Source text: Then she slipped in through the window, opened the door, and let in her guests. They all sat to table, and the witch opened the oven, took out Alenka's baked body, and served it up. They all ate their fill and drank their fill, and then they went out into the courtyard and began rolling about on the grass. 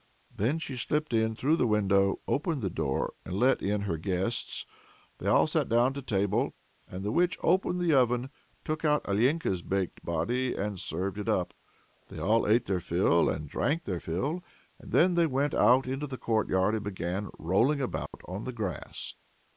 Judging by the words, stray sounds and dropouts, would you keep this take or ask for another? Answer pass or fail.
fail